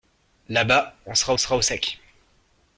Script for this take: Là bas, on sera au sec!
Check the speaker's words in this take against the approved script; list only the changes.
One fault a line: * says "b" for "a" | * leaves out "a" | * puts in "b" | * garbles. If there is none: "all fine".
* puts in "sera"